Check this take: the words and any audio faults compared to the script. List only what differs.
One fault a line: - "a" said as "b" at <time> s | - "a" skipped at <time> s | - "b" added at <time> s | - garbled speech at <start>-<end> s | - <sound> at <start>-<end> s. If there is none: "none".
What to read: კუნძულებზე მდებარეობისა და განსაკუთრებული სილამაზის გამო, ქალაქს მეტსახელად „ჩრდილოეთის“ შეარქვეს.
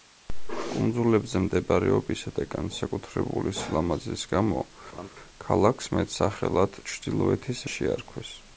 - laugh at 4.9-5.1 s